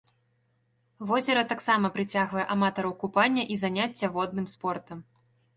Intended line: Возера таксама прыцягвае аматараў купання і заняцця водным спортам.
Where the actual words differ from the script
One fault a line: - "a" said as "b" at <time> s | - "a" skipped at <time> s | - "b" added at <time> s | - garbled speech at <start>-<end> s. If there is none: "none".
none